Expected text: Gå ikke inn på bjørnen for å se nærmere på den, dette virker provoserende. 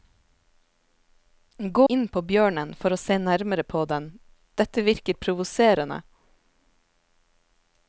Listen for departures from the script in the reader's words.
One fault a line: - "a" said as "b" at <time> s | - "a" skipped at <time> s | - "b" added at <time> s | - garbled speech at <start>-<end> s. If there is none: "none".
- "ikke" skipped at 1.8 s